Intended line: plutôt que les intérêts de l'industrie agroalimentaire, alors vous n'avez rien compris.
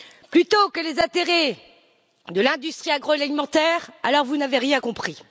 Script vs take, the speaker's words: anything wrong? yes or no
no